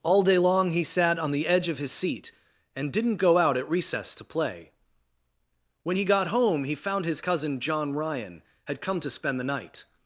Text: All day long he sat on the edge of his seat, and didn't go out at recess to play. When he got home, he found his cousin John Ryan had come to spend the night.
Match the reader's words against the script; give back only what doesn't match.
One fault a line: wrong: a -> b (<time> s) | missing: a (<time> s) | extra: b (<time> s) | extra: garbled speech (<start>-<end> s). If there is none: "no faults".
no faults